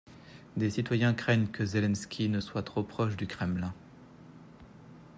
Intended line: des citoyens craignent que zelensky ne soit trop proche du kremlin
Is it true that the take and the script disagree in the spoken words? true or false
false